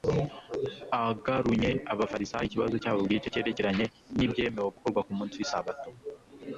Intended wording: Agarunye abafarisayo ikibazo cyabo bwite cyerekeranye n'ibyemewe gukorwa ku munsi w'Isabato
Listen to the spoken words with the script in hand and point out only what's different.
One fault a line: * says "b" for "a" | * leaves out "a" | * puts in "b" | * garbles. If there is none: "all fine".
all fine